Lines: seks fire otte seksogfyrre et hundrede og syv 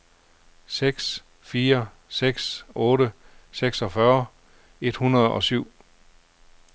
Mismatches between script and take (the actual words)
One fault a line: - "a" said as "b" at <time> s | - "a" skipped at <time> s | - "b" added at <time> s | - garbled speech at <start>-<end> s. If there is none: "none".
- "seks" added at 2.1 s